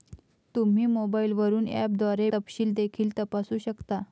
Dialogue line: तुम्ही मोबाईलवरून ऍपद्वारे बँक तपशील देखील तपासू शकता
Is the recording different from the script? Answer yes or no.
yes